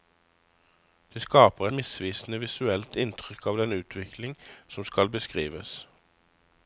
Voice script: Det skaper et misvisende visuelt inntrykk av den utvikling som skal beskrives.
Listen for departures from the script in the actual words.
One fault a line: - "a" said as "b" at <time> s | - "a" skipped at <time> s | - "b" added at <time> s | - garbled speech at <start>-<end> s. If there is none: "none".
- "et" skipped at 1.7 s